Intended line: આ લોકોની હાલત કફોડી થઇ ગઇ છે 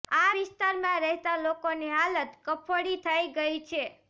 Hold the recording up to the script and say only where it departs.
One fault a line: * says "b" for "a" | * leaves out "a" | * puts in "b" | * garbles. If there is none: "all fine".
* puts in "વિસ્તારમાં રહેતા"